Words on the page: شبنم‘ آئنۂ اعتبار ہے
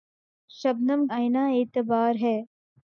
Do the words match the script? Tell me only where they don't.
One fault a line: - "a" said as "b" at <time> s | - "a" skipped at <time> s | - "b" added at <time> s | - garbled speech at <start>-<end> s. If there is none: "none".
none